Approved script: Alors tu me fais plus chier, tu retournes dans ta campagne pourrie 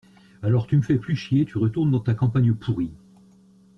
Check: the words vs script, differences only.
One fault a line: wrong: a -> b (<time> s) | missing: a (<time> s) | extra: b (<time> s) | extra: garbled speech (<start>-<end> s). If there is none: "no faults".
no faults